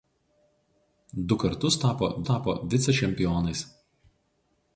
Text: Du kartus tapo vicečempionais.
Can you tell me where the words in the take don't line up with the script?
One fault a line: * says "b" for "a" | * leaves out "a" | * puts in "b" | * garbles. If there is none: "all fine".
* puts in "tapo"